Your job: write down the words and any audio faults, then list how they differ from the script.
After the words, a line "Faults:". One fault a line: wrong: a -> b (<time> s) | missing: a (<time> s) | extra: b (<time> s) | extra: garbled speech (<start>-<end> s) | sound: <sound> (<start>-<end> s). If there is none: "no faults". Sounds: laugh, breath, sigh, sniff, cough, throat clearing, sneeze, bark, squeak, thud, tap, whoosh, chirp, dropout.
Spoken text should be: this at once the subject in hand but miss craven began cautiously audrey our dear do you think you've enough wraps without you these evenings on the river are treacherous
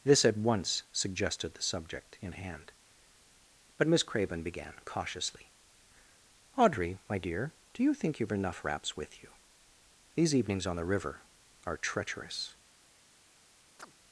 this at once suggested the subject in hand but miss craven began cautiously audrey my dear do you think you've enough wraps with you these evenings on the river are treacherous
Faults:
extra: suggested (0.9 s)
wrong: our -> my (7.1 s)
wrong: without -> with (9.0 s)
sound: chirp (13.8-13.9 s)